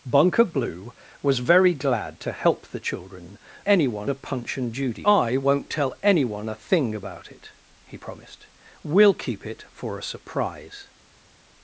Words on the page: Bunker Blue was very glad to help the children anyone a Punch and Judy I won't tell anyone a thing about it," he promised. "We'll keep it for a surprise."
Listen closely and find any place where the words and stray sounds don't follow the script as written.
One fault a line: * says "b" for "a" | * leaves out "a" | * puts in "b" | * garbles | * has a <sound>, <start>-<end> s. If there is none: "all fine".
all fine